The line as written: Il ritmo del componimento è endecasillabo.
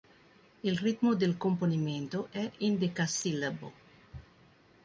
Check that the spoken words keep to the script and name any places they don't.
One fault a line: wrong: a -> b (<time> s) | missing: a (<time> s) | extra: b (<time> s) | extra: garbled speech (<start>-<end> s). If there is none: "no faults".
no faults